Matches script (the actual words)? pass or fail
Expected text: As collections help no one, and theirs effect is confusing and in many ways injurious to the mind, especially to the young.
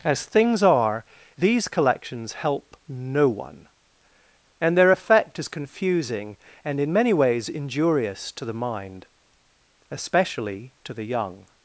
fail